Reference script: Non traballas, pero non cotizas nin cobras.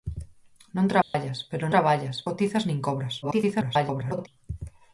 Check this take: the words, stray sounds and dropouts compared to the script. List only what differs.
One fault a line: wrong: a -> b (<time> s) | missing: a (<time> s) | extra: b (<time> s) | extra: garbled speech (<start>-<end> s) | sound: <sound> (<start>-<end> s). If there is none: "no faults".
sound: dropout (1.0-1.1 s)
wrong: non -> traballas (1.7 s)
extra: garbled speech (3.2-4.3 s)